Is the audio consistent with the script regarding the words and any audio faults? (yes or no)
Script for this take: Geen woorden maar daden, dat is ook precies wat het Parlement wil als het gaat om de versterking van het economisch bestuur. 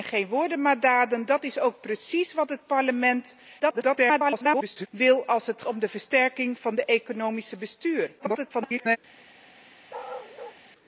no